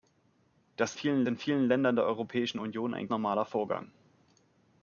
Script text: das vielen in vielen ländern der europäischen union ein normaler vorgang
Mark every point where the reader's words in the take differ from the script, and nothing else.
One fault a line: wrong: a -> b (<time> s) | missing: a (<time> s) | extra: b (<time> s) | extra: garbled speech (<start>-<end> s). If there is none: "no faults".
no faults